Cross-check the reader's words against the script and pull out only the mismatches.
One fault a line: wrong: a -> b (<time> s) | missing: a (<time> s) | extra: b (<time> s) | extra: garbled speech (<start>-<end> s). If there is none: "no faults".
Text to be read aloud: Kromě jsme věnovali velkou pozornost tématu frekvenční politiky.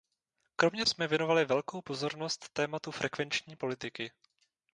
no faults